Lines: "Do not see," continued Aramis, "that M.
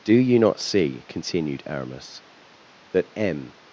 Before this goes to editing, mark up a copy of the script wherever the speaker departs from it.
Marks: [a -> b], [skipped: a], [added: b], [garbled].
"Do [added: you] not see," continued Aramis, "that M.